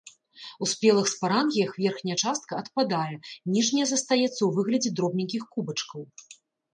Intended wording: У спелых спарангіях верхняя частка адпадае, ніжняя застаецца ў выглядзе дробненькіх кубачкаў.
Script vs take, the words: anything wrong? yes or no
no